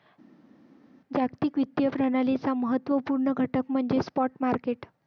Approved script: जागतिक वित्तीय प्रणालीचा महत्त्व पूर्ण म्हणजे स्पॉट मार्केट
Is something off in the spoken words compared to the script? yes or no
yes